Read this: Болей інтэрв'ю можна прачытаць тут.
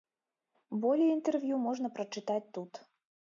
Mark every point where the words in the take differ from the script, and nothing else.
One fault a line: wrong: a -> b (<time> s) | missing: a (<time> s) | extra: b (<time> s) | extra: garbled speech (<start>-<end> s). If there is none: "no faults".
no faults